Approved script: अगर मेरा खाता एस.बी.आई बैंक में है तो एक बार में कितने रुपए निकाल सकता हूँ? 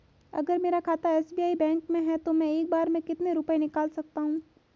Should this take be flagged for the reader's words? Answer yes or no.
yes